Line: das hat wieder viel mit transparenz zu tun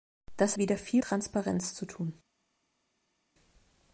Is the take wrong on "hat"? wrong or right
wrong